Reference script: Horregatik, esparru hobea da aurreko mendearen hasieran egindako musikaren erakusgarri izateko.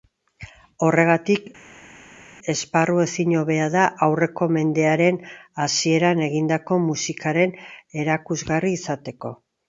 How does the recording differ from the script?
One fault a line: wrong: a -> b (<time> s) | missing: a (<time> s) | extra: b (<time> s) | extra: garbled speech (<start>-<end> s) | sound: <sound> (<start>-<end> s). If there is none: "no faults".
extra: ezin (3.0 s)